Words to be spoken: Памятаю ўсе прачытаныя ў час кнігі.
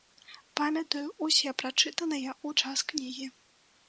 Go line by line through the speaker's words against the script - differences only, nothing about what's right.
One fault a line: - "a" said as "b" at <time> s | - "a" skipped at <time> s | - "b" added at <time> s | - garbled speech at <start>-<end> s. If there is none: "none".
none